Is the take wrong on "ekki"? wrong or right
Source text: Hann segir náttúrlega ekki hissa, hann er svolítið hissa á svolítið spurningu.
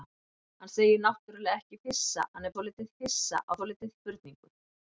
right